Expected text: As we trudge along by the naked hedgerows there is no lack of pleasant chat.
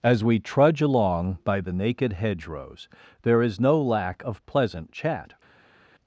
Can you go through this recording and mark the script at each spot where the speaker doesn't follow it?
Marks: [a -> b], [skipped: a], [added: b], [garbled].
As we trudge along by the naked hedgerows there is no lack of pleasant chat.